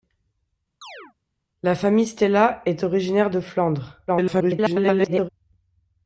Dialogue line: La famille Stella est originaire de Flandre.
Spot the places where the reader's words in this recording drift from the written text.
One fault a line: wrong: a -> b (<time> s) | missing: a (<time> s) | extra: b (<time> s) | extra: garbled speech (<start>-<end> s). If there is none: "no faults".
extra: garbled speech (4.1-5.3 s)